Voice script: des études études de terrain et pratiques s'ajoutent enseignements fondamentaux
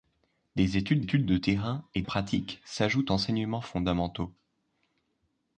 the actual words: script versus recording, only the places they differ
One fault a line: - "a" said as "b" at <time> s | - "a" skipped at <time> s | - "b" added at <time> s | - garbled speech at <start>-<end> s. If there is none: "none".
none